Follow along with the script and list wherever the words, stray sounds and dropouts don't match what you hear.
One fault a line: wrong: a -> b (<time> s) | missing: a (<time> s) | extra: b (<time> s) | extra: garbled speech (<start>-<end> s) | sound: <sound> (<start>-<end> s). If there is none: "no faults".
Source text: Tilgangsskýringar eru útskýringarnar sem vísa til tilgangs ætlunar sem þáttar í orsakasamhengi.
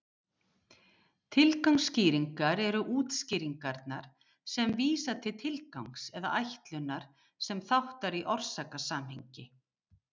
extra: eða (6.2 s)